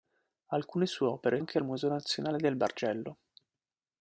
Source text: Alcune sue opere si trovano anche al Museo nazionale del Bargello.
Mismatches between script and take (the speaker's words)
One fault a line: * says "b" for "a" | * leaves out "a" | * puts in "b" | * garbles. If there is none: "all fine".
* leaves out "si trovano"